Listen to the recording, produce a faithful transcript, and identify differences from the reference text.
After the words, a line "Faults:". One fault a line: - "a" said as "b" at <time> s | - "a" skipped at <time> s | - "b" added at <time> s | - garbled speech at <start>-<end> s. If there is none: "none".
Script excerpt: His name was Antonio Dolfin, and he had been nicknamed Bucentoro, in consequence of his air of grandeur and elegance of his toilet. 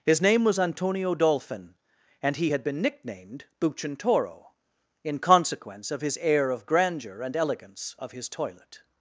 His name was Antonio Dolfin, and he had been nicknamed Bucentoro, in consequence of his air of grandeur and elegance of his toilet.
Faults:
none